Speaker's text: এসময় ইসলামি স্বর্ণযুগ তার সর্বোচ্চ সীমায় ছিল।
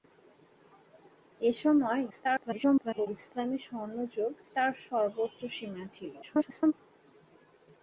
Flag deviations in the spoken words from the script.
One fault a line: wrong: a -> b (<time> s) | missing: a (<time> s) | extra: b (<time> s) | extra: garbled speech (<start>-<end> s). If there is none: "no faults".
extra: garbled speech (2.1-3.1 s)
extra: garbled speech (6.2-6.7 s)